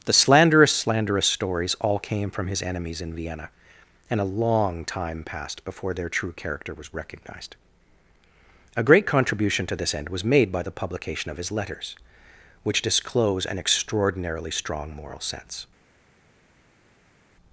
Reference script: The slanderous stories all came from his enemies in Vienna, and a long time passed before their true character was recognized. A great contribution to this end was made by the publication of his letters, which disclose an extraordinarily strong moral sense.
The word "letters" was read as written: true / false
true